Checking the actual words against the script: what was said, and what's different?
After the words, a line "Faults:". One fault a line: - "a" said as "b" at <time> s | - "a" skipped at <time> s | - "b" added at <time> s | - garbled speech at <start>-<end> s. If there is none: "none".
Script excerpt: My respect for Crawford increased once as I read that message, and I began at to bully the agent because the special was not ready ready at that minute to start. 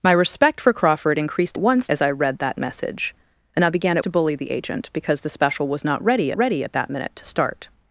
My respect for Crawford increased once as I read that message, and I began at to bully the agent because the special was not ready ready at that minute to start.
Faults:
none